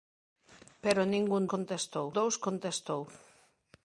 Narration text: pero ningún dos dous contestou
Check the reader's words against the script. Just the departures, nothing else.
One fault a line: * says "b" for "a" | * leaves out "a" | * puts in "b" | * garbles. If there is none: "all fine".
* says "contestou" for "dos"